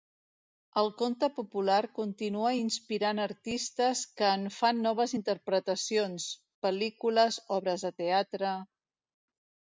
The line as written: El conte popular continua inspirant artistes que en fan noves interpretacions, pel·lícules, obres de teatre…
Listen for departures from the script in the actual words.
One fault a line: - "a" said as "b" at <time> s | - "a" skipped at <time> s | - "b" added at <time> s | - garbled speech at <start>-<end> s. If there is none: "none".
none